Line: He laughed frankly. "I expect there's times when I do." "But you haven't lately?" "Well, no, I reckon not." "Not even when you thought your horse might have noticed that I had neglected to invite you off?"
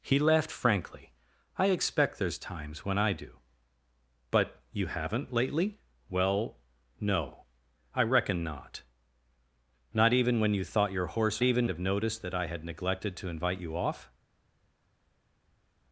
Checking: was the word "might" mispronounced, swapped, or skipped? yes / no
yes